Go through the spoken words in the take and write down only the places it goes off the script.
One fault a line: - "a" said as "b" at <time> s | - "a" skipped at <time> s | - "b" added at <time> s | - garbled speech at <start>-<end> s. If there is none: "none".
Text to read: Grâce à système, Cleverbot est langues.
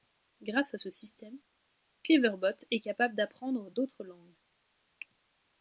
- "ce" added at 0.8 s
- "capable d'apprendre d'autres" added at 2.8 s